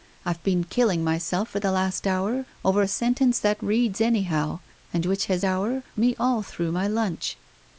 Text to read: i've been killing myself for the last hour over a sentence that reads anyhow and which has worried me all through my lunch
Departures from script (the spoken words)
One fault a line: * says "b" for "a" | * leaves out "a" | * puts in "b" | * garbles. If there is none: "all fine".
* says "hour" for "worried"